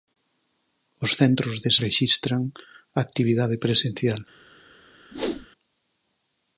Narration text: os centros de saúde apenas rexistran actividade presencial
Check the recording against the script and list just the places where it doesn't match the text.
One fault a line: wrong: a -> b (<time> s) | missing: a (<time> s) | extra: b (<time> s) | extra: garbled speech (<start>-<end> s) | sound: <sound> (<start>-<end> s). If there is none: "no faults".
missing: saúde apenas (1.7 s)
sound: whoosh (5.1-5.5 s)